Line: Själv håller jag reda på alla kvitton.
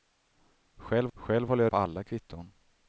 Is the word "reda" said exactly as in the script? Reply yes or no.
no